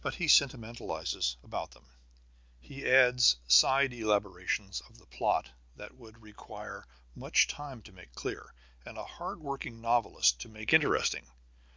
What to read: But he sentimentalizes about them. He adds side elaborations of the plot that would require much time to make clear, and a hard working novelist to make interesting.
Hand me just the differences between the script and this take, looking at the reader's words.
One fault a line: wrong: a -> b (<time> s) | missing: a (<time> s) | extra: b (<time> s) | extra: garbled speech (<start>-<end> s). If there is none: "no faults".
no faults